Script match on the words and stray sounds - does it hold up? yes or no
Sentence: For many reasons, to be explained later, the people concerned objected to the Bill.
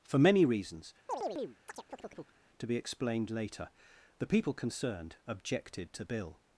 no